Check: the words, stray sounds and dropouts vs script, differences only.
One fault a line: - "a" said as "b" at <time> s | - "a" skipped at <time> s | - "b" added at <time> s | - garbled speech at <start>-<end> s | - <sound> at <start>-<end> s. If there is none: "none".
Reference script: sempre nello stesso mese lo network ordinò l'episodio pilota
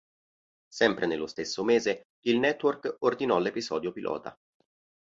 - "lo" said as "il" at 2.2 s